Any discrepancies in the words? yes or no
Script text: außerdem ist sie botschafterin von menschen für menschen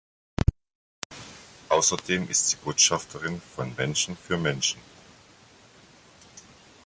no